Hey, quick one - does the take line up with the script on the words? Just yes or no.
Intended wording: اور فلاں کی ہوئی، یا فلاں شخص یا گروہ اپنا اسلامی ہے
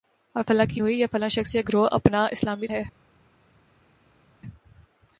yes